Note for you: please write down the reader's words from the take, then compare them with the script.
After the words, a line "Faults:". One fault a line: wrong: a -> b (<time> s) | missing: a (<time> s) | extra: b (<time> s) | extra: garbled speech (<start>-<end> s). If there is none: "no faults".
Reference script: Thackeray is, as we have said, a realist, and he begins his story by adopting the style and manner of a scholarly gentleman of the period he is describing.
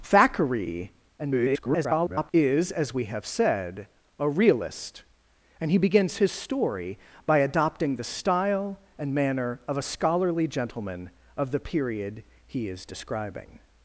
Thackeray [garbled] is, as we have said, a realist, and he begins his story by adopting the style and manner of a scholarly gentleman of the period he is describing.
Faults:
extra: garbled speech (1.2-2.3 s)